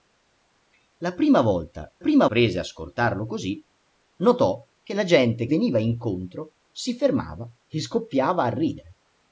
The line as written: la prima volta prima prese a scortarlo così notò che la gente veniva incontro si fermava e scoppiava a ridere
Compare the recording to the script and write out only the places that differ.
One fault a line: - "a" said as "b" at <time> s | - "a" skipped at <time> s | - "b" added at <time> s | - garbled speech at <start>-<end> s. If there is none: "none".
none